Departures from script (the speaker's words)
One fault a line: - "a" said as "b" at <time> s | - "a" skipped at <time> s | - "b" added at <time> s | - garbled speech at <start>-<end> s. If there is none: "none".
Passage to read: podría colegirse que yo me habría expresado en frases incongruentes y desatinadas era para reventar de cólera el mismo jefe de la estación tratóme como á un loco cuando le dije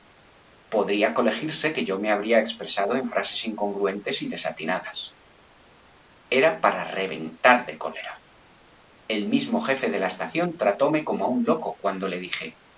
none